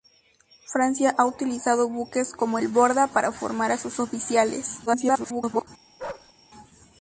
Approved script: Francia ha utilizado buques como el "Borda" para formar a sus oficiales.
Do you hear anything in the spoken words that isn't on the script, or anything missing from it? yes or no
yes